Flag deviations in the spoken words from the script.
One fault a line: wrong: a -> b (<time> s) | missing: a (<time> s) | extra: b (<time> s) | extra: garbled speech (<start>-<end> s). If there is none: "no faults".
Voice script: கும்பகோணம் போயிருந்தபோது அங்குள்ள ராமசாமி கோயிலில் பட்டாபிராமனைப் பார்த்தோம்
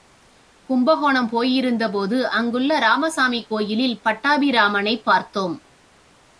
no faults